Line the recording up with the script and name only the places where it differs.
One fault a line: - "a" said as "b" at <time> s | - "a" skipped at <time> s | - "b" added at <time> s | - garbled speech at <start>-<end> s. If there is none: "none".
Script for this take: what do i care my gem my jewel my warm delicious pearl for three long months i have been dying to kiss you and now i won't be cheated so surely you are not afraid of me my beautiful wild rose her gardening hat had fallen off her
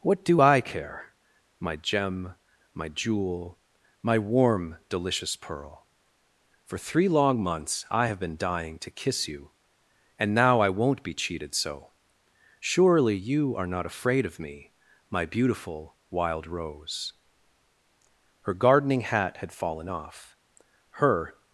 none